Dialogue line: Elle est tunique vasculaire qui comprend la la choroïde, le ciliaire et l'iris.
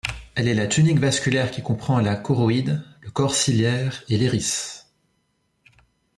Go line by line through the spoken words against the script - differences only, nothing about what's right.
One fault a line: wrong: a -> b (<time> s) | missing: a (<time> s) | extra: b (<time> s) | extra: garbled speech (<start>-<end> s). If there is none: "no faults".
extra: la (0.5 s)
missing: la (2.2 s)
extra: corps (3.1 s)